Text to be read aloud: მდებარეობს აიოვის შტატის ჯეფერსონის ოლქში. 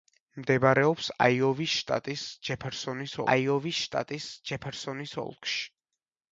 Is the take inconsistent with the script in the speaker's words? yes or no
yes